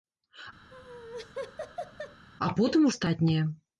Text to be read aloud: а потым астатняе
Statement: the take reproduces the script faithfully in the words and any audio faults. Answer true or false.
false